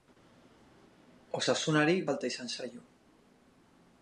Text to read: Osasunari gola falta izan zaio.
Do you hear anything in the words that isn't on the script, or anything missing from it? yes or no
yes